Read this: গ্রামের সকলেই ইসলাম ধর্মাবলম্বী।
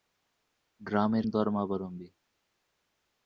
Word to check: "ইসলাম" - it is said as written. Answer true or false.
false